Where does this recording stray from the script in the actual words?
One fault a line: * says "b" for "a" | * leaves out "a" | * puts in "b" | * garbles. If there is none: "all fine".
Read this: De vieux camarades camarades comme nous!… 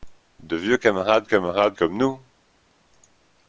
all fine